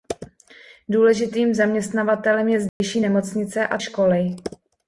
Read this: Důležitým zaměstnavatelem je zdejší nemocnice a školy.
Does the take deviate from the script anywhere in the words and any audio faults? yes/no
yes